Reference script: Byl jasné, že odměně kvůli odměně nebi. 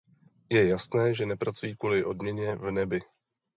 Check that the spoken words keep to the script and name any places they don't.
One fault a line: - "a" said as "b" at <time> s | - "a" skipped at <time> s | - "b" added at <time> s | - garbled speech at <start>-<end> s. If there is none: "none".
- "Byl" said as "Je" at 0.5 s
- "odměně" said as "nepracují" at 1.2 s
- "v" added at 2.6 s